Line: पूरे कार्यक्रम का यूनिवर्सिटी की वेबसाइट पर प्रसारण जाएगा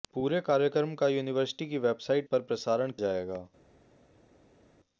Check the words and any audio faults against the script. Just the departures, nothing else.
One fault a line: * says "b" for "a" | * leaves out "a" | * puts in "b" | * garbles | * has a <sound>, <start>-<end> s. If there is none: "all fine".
all fine